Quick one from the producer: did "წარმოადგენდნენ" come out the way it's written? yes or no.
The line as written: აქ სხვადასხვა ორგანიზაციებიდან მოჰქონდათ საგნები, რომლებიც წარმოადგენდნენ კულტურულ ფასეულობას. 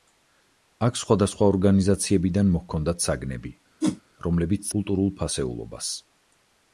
no